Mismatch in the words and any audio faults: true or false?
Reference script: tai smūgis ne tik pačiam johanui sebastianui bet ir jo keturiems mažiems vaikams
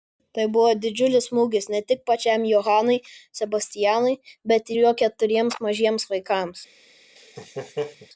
true